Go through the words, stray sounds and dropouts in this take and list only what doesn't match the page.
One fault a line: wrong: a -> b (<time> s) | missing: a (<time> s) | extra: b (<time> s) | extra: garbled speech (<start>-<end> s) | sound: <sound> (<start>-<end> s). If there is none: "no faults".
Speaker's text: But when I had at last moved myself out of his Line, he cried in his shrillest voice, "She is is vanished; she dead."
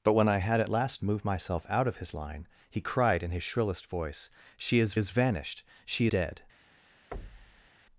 sound: thud (7.1-7.7 s)